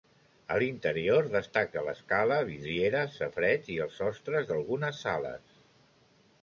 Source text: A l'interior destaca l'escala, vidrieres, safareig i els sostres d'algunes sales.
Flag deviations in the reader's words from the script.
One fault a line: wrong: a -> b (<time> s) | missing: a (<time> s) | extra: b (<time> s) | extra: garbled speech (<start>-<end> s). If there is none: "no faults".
no faults